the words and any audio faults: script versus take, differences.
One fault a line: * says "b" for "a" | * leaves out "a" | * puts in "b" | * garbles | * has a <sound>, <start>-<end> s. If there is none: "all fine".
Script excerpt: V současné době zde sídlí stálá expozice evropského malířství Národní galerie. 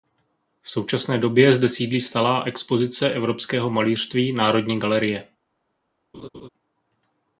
* has a laugh, 6.1-6.5 s